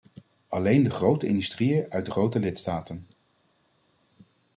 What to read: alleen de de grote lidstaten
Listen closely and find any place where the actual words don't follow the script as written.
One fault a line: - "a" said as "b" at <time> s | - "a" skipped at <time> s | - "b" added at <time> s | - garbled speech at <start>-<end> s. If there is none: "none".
- "grote industrieën uit" added at 0.9 s